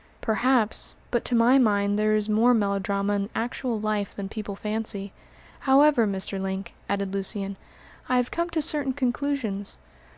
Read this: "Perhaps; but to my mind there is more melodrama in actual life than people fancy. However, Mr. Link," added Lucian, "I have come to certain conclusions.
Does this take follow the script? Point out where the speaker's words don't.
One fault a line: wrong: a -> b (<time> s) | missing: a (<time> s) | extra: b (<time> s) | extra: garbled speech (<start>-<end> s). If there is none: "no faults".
no faults